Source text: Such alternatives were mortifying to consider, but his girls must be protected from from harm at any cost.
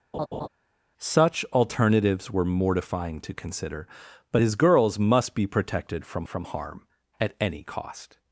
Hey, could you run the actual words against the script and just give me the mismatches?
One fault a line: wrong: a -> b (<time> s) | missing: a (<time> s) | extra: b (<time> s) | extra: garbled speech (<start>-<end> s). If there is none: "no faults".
no faults